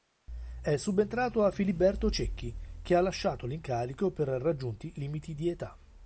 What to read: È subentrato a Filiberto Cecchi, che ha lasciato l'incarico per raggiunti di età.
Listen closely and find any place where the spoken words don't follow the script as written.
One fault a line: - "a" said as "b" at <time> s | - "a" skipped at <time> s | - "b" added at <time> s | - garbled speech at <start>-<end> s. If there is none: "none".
- "limiti" added at 4.9 s